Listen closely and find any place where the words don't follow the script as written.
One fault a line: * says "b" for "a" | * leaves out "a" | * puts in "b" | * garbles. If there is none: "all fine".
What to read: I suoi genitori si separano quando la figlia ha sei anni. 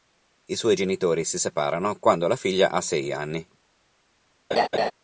all fine